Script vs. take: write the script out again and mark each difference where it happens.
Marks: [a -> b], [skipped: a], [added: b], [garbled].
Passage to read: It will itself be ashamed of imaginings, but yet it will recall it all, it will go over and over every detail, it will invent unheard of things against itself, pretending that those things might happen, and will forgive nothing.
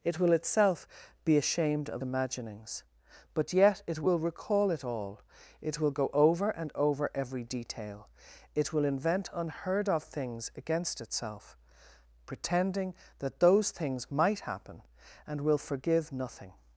It will itself be ashamed of imaginings, but yet it will recall it all, it will go over and over every detail, it will invent unheard of things against itself, pretending that those things might happen, and will forgive nothing.